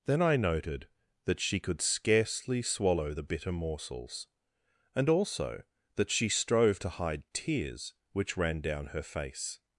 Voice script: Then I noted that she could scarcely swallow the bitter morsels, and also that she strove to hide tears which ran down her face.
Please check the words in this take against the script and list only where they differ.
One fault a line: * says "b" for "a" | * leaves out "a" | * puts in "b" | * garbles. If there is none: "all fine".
all fine